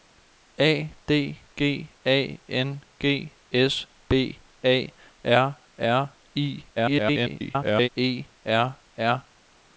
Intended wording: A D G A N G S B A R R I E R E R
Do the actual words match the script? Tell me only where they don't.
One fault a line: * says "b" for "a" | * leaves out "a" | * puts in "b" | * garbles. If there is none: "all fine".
* garbles
* leaves out "E"